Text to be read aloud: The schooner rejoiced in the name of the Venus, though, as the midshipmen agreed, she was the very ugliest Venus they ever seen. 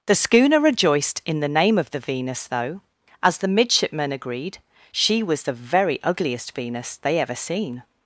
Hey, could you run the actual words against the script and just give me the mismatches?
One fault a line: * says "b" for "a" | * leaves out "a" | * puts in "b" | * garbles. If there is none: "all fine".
all fine